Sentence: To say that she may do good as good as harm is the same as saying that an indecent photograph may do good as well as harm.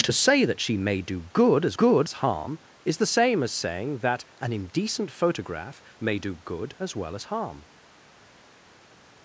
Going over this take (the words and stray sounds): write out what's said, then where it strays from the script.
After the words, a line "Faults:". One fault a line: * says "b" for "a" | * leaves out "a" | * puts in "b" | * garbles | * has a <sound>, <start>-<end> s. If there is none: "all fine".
To say that she may do good as good as harm is the same as saying that an indecent photograph may do good as well as harm.
Faults:
all fine